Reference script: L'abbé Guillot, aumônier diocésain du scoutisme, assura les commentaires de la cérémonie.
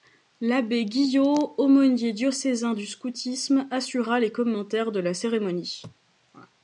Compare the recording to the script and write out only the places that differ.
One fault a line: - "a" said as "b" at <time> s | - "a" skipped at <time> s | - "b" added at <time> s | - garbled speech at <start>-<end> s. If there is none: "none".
none